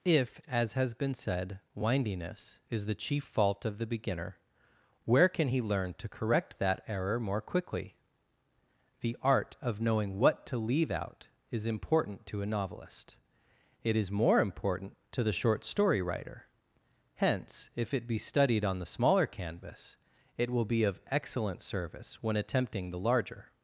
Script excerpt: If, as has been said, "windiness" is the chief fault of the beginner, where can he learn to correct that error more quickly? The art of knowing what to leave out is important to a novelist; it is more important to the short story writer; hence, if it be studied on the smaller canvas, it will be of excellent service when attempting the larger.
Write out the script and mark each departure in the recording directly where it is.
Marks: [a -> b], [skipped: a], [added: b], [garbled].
If, as has been said, "windiness" is the chief fault of the beginner, where can he learn to correct that error more quickly? The art of knowing what to leave out is important to a novelist; it is more important to the short story writer; hence, if it be studied on the smaller canvas, it will be of excellent service when attempting the larger.